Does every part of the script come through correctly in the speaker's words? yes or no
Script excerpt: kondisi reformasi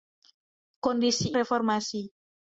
yes